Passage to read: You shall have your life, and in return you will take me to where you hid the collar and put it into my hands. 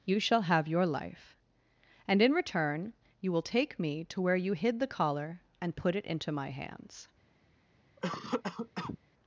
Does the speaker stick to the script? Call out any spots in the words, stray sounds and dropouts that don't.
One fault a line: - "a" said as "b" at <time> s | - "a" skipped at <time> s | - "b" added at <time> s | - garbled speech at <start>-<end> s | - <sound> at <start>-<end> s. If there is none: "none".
- cough at 8.0-9.0 s